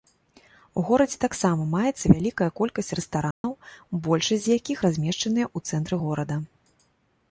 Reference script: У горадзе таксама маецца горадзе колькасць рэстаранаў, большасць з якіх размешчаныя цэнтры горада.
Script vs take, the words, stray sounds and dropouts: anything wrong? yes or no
yes